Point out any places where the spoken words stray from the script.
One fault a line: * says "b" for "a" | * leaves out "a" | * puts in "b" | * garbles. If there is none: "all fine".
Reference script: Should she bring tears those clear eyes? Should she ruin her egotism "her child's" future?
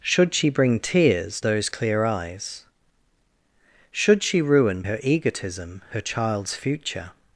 all fine